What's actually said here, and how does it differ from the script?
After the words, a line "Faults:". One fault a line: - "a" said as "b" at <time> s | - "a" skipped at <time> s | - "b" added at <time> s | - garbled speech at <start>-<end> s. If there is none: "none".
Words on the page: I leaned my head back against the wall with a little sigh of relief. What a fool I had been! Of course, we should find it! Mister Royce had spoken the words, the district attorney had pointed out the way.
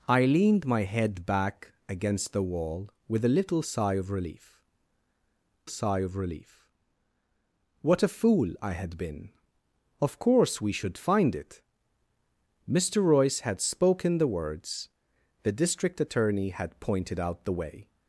I leaned my head back against the wall with a little sigh of relief sigh of relief. What a fool I had been! Of course, we should find it! Mister Royce had spoken the words, the district attorney had pointed out the way.
Faults:
- "sigh of relief" added at 5.7 s